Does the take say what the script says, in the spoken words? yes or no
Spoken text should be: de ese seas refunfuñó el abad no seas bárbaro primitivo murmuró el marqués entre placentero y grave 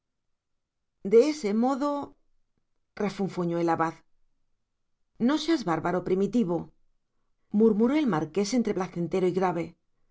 no